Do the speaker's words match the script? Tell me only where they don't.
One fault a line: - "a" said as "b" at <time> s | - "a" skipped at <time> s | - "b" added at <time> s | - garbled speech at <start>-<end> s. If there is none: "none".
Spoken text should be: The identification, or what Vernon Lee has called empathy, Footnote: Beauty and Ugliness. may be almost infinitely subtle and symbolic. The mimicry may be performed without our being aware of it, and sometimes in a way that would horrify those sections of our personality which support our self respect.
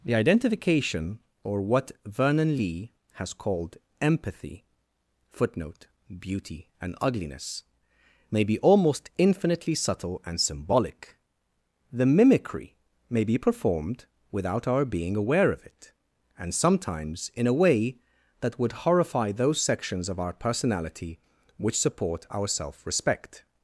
none